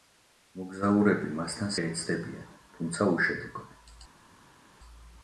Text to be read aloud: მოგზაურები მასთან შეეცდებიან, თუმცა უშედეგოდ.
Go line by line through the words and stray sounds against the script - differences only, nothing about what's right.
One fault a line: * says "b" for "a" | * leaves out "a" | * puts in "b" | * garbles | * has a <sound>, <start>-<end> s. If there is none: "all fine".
all fine